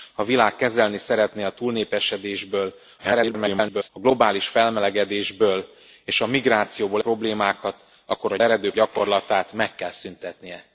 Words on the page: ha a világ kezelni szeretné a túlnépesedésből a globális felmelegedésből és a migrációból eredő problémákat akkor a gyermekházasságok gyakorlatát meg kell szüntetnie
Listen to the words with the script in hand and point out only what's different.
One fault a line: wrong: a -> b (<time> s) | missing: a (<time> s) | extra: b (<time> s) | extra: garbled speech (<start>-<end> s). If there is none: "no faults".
extra: garbled speech (3.0-3.9 s)
missing: eredő (7.0 s)
wrong: gyermekházasságok -> eredő (8.4 s)